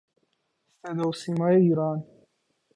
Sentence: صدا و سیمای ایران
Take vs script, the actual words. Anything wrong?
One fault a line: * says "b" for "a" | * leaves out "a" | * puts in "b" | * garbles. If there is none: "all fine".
all fine